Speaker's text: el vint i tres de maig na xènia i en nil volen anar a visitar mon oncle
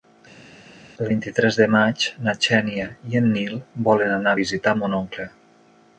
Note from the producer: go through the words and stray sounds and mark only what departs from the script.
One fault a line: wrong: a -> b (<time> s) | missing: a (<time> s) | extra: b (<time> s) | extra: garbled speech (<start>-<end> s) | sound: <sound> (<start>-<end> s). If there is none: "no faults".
no faults